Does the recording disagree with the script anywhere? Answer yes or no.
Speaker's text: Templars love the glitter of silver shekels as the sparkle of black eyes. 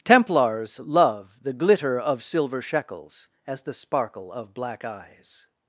no